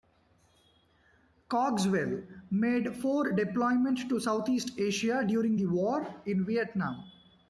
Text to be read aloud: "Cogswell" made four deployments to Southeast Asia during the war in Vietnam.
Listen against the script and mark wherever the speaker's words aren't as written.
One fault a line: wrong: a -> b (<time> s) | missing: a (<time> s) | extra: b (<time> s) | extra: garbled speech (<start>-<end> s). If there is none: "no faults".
no faults